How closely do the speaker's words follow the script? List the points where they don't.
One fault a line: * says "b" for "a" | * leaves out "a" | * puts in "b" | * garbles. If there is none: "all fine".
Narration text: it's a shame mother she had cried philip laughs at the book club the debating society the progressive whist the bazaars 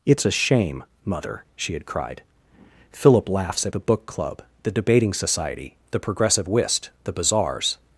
all fine